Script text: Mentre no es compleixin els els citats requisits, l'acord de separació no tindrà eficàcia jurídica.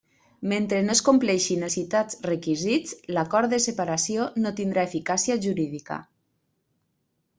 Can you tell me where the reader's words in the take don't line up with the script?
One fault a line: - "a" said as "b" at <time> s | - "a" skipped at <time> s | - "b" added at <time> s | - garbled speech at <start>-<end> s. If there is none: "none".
- "els" skipped at 1.7 s